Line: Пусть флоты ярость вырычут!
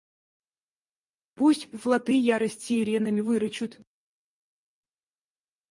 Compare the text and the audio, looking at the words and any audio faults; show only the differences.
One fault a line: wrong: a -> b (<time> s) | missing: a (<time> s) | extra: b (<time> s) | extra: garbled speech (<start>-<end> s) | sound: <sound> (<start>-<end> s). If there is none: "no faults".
extra: сиренами (2.6 s)